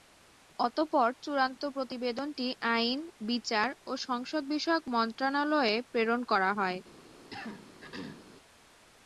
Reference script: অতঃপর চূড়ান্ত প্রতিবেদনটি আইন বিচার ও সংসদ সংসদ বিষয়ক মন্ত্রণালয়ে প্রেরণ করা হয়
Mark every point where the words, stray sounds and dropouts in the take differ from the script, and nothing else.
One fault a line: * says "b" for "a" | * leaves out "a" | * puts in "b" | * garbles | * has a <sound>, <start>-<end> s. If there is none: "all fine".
* leaves out "সংসদ"
* has a throat clearing, 7.3-8.3 s